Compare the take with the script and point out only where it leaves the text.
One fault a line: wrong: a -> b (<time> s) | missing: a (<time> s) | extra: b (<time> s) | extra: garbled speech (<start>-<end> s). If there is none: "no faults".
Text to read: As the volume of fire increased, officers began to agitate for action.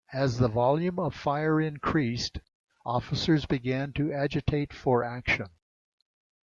no faults